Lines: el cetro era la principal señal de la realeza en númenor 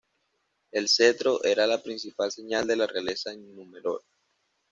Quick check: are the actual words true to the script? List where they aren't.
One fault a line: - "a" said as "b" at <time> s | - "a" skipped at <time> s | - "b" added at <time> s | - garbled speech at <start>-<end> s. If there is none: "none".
none